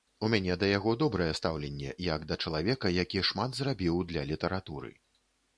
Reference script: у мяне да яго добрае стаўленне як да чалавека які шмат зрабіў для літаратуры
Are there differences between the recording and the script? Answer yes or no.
no